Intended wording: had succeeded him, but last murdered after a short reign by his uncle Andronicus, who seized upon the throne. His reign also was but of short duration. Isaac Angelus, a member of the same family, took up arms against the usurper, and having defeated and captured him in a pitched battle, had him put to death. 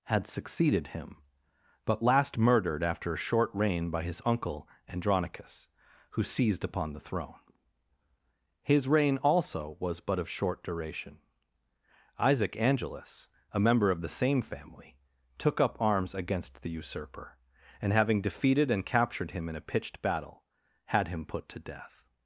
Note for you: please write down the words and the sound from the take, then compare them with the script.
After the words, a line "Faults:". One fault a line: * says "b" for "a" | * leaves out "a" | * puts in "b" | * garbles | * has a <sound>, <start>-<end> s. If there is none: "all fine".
had succeeded him, but last murdered after a short reign by his uncle Andronicus, who seized upon the throne. His reign also was but of short duration. Isaac Angelus, a member of the same family, took up arms against the usurper, and having defeated and captured him in a pitched battle, had him put to death.
Faults:
all fine